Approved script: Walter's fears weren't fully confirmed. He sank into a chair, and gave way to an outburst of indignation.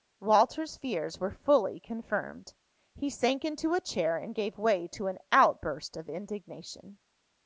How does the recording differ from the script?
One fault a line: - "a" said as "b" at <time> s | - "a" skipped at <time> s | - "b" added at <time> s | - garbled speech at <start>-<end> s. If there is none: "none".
- "weren't" said as "were" at 1.2 s